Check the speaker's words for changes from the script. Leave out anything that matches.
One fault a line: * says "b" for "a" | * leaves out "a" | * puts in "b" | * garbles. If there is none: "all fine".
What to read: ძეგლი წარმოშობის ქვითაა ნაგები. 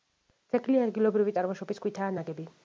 * puts in "ადგილობრივი"